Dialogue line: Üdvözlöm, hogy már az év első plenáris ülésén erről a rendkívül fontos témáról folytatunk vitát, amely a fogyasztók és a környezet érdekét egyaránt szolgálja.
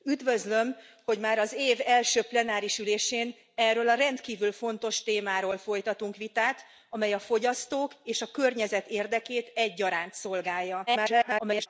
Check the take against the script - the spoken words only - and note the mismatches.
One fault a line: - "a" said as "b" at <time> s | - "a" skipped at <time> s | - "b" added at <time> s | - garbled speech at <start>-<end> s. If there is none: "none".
- garbled speech at 10.9-11.7 s